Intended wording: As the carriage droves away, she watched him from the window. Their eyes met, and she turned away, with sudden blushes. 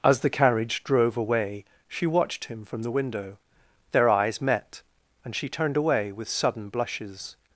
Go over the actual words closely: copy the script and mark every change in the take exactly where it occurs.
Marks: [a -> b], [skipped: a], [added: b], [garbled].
As the carriage [droves -> drove] away, she watched him from the window. Their eyes met, and she turned away, with sudden blushes.